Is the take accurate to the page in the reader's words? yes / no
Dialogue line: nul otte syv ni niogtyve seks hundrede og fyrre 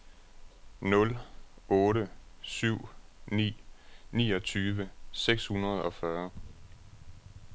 yes